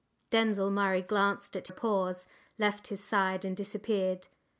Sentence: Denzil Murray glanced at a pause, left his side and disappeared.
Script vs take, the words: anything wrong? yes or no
no